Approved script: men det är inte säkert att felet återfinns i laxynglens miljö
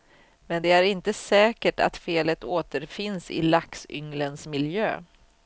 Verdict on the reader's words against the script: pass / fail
pass